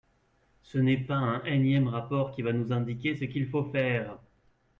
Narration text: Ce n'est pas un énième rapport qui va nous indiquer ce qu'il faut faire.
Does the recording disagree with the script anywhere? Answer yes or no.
no